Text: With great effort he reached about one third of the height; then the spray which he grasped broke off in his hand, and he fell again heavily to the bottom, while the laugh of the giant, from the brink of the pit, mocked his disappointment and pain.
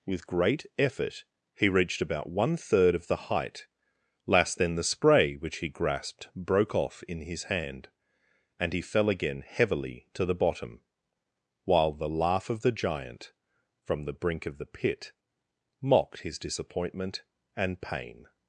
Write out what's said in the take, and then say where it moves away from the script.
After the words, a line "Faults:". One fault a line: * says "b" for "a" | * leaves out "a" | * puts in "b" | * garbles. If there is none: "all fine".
With great effort he reached about one third of the height; last then the spray which he grasped broke off in his hand, and he fell again heavily to the bottom, while the laugh of the giant, from the brink of the pit, mocked his disappointment and pain.
Faults:
* puts in "last"